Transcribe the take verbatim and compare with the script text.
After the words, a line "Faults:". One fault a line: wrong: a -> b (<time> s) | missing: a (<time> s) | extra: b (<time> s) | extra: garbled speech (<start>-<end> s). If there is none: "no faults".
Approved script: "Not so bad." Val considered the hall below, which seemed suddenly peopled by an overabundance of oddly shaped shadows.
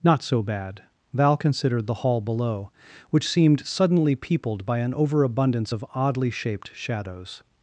"Not so bad." Val considered the hall below, which seemed suddenly peopled by an overabundance of oddly shaped shadows.
Faults:
no faults